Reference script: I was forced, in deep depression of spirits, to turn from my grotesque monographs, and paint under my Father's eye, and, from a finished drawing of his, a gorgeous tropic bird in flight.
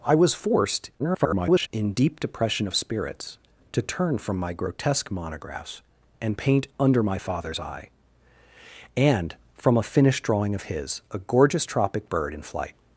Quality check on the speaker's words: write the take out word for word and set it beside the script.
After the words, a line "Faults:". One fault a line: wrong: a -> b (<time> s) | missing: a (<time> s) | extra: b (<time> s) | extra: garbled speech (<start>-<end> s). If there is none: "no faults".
I was forced, [garbled] in deep depression of spirits, to turn from my grotesque monographs, and paint under my Father's eye, and, from a finished drawing of his, a gorgeous tropic bird in flight.
Faults:
extra: garbled speech (1.0-1.7 s)